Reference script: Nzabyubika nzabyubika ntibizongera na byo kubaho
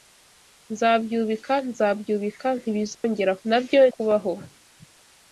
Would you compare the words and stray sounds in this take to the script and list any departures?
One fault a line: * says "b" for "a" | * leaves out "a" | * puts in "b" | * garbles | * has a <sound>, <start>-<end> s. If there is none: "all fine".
* has a dropout, 2.9-3.0 s